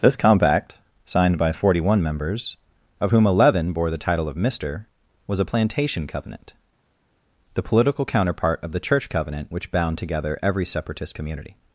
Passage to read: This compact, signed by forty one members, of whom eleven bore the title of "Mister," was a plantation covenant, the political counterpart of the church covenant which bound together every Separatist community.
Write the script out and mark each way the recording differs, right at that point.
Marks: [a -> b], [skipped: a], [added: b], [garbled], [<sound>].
This compact, signed by forty one members, of whom eleven bore the title of "Mister," was a plantation covenant, the political counterpart of the church covenant which bound together every Separatist community.